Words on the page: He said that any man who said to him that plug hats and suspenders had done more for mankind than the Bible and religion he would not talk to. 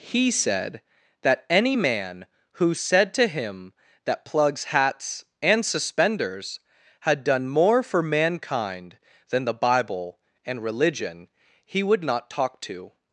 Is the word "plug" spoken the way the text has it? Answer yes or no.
no